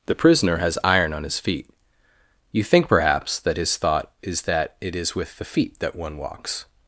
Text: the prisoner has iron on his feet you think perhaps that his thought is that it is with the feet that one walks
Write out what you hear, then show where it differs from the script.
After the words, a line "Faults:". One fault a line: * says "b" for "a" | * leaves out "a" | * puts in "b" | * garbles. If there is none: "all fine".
the prisoner has iron on his feet you think perhaps that his thought is that it is with the feet that one walks
Faults:
all fine